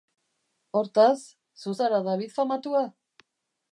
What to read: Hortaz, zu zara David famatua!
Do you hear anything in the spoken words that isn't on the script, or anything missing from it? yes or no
no